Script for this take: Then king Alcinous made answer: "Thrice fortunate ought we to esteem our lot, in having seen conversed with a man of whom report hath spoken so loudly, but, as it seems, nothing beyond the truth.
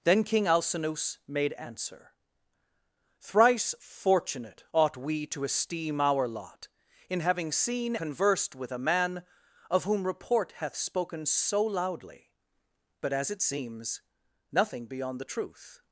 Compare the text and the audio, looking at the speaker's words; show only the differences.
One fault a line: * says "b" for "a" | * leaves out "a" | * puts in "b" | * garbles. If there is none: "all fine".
all fine